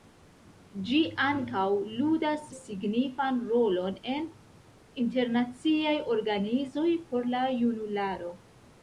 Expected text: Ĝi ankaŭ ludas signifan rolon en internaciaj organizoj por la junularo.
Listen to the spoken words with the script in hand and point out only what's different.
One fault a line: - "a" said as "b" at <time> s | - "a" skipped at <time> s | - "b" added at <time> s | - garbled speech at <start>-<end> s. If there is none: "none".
none